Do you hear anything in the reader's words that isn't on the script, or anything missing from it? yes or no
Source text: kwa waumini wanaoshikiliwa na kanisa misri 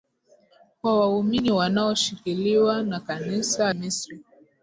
no